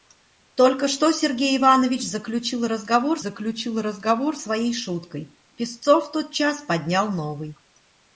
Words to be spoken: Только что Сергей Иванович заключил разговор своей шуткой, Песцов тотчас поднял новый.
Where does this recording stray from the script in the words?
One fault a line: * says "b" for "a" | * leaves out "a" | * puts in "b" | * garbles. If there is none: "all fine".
* puts in "заключил разговор"